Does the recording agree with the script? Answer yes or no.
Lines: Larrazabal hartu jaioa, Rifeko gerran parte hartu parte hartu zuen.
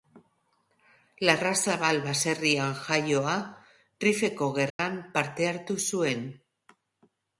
no